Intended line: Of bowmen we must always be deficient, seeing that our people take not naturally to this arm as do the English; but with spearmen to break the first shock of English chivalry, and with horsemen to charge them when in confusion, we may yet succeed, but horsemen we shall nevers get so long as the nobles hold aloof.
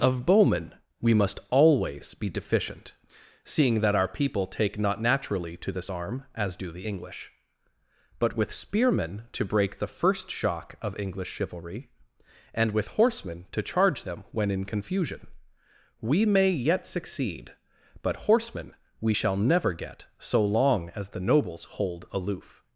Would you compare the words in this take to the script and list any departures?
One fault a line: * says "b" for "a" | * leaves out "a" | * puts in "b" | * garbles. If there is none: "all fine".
* says "never" for "nevers"